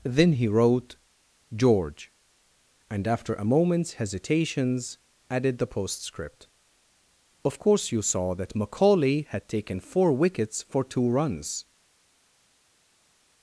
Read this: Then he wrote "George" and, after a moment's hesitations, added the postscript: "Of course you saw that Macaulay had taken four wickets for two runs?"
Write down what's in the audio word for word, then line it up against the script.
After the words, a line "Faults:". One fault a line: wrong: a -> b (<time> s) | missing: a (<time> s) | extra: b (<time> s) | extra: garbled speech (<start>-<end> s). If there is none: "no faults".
Then he wrote "George" and, after a moment's hesitations, added the postscript: "Of course you saw that Macaulay had taken four wickets for two runs?"
Faults:
no faults